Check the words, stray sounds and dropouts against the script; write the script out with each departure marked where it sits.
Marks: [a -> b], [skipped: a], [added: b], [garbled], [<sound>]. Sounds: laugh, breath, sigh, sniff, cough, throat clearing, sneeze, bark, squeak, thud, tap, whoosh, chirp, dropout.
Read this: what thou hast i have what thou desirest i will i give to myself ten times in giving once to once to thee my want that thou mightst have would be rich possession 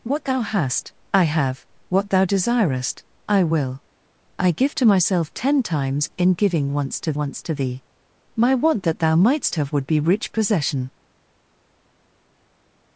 what thou hast i have what thou desirest i will i give to myself ten times in giving once to once to thee my want that thou mightst have would be rich possession